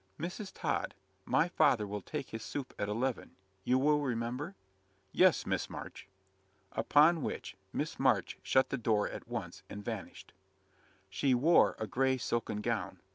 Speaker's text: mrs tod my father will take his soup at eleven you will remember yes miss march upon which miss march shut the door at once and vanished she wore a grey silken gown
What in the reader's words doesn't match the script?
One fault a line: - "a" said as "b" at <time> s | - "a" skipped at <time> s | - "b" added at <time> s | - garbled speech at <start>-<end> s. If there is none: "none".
none